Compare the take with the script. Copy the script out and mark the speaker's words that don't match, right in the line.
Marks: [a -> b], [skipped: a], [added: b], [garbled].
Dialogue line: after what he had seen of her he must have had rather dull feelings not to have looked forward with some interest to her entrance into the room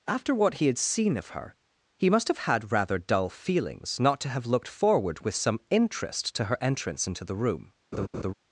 after what he had seen of her he must have had rather dull feelings not to have looked forward with some interest to her entrance into the room